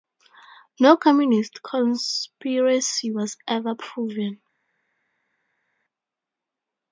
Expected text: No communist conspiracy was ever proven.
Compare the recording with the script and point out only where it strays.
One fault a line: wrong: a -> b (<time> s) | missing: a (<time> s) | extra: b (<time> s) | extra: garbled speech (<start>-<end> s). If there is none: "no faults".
no faults